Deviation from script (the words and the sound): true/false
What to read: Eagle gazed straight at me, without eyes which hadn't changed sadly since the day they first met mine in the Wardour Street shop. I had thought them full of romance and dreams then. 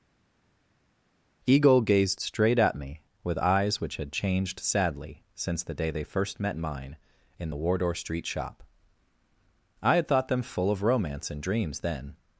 true